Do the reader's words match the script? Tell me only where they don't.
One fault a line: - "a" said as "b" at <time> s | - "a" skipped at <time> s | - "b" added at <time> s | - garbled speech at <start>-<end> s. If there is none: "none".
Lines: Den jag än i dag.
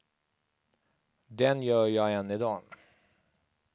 - "gör" added at 1.6 s